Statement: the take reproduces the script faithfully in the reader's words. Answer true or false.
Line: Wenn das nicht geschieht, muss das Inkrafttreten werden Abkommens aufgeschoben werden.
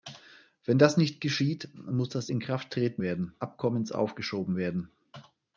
true